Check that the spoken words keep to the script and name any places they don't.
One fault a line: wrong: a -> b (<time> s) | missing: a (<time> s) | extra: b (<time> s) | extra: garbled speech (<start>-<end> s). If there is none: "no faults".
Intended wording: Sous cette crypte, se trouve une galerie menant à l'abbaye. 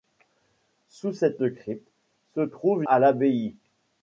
missing: une galerie menant (2.8 s)